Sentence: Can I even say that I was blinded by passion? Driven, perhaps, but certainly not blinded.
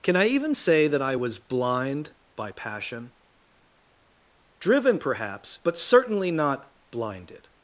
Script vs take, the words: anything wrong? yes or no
yes